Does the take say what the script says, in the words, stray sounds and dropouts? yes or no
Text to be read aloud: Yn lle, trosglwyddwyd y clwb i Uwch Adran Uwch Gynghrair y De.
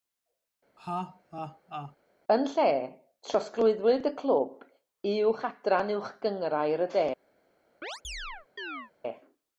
no